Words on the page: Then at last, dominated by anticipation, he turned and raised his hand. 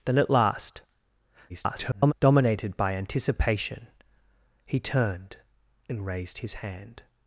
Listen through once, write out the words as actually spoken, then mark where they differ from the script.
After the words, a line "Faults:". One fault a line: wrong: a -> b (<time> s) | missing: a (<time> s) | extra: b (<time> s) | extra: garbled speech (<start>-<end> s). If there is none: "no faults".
Then at last, [garbled] dominated by anticipation, he turned and raised his hand.
Faults:
extra: garbled speech (1.5-2.1 s)